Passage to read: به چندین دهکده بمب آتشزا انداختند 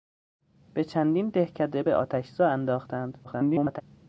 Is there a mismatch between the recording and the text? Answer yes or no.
yes